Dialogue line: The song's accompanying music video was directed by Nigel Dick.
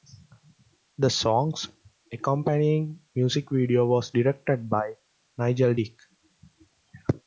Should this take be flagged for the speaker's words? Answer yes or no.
no